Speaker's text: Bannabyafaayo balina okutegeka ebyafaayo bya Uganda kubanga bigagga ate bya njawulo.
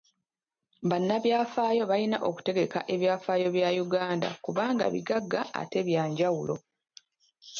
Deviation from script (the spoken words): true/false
false